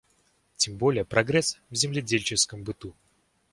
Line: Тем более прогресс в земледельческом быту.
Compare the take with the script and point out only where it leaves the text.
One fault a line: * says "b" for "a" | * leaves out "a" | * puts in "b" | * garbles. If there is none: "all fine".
all fine